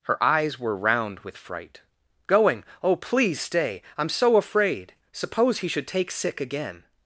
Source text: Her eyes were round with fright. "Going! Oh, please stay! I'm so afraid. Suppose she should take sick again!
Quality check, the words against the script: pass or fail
fail